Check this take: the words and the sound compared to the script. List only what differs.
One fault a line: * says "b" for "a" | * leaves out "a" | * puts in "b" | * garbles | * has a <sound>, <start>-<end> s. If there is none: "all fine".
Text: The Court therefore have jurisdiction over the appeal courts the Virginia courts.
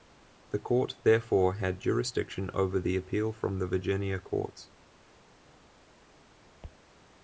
* says "had" for "have"
* says "from" for "courts"